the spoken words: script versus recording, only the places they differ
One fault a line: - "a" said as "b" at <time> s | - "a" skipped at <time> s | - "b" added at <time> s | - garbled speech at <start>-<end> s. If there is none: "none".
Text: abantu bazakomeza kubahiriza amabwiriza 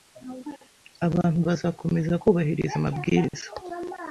none